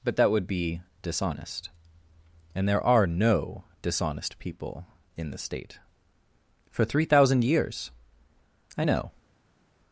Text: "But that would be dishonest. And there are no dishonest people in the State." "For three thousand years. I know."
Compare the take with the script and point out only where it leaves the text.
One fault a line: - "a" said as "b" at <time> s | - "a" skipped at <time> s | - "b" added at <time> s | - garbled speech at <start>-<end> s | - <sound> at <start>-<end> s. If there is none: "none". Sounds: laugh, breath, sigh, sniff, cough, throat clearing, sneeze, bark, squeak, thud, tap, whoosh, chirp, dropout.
none